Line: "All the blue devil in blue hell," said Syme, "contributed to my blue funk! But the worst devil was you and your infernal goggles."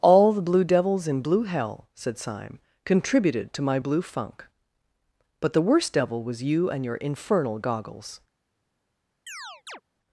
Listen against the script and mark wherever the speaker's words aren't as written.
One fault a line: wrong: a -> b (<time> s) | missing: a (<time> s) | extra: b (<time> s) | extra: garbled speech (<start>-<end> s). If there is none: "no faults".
wrong: devil -> devils (0.6 s)